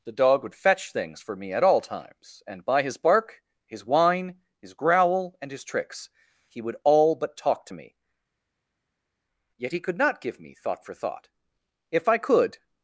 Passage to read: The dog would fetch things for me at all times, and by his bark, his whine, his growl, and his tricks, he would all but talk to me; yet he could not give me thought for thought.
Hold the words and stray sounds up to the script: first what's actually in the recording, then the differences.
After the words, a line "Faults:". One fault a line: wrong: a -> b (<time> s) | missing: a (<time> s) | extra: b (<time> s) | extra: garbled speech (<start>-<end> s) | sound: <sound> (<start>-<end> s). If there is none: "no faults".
The dog would fetch things for me at all times, and by his bark, his whine, his growl, and his tricks, he would all but talk to me; yet he could not give me thought for thought. If I could
Faults:
extra: If I could (11.9 s)